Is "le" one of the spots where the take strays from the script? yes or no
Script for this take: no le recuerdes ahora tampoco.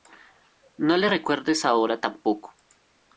no